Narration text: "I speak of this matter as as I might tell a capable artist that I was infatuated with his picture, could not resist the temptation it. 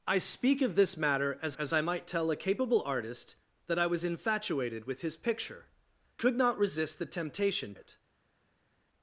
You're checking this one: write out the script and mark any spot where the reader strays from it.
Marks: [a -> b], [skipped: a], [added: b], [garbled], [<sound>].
"I speak of this matter as as I might tell a capable artist that I was infatuated with his picture, could not resist the temptation it.